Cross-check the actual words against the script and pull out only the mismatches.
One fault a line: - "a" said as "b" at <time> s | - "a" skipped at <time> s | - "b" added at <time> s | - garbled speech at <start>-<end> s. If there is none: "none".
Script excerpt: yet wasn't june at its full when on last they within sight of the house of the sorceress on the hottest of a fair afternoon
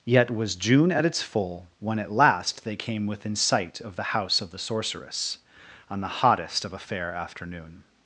- "wasn't" said as "was" at 0.3 s
- "on" said as "at" at 2.0 s
- "came" added at 2.8 s